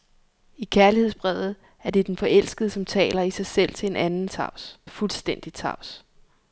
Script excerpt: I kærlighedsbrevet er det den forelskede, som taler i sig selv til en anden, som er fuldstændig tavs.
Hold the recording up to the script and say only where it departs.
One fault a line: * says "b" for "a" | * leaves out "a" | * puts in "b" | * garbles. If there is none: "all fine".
* says "tavs" for "som"